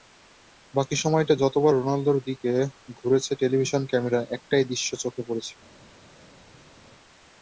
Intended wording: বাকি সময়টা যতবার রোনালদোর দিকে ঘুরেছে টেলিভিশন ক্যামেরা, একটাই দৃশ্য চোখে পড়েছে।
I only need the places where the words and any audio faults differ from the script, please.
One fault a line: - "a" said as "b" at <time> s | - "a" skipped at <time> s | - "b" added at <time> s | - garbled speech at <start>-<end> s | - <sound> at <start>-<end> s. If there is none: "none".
none